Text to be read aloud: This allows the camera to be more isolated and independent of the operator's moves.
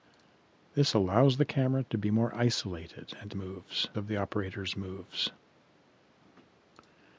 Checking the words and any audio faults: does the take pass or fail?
fail